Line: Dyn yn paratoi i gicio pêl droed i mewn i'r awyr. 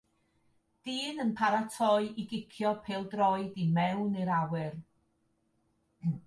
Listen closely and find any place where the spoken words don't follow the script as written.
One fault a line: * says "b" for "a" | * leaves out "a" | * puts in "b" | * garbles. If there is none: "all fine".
all fine